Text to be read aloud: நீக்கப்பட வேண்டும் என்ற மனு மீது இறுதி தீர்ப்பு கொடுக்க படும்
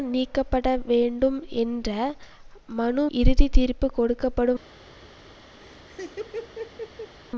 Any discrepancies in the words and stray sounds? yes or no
yes